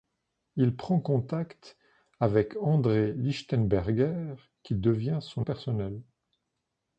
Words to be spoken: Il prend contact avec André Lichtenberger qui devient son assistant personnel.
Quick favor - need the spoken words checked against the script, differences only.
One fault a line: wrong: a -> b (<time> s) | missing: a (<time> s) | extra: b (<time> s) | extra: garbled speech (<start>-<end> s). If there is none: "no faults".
missing: assistant (5.5 s)